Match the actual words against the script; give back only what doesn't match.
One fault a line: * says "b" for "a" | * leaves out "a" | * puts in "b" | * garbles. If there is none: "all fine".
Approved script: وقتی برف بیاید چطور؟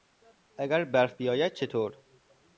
* says "اگر" for "وقتی"